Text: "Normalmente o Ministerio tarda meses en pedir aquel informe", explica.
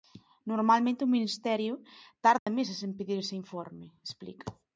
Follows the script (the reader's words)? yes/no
no